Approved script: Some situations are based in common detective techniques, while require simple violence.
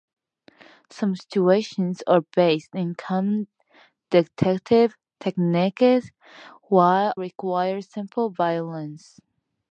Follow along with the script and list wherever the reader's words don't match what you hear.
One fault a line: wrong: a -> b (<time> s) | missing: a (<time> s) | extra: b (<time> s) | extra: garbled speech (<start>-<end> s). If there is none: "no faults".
no faults